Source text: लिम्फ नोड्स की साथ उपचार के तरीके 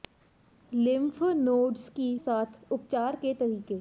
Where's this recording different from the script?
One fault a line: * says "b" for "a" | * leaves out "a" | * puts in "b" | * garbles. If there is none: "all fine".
all fine